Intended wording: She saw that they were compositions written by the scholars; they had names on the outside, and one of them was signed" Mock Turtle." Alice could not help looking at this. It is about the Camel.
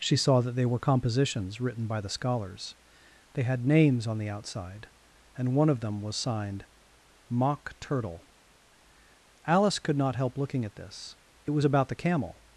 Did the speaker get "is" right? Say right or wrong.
wrong